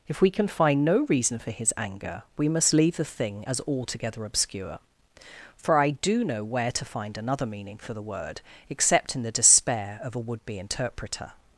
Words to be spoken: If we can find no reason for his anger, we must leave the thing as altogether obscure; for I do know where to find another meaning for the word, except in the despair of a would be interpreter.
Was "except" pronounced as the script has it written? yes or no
yes